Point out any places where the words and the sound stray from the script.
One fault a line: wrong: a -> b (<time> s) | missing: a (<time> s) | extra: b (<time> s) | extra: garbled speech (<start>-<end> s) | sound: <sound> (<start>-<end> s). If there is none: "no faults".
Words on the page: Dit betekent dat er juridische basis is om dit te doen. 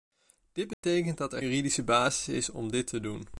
sound: dropout (0.7-0.8 s)